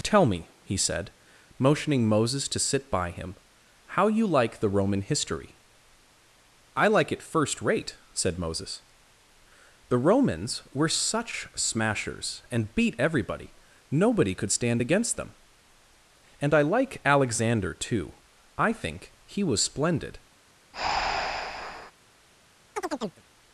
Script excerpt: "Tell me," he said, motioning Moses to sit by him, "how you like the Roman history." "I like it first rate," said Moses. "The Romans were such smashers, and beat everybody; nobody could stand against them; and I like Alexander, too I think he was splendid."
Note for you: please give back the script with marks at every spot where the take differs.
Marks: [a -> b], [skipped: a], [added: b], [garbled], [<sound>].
"Tell me," he said, motioning Moses to sit by him, "how you like the Roman history." "I like it first rate," said Moses. "The Romans were such smashers, and beat everybody; nobody could stand against them; and I like Alexander, too I think he was splendid." [breath] [chirp]